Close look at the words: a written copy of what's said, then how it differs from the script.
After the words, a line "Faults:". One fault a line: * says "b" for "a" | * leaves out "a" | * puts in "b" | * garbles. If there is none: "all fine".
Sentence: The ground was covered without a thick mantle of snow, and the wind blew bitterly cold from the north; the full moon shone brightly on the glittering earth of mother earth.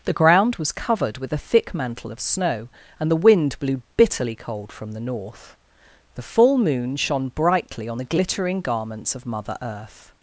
The ground was covered with a thick mantle of snow, and the wind blew bitterly cold from the north; the full moon shone brightly on the glittering garments of mother earth.
Faults:
* says "with" for "without"
* says "garments" for "earth"